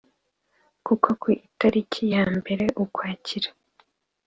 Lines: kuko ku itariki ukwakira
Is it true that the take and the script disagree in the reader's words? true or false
true